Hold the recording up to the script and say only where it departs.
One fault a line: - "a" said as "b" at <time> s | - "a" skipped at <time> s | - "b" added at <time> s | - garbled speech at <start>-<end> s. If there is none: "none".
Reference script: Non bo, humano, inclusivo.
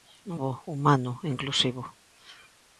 none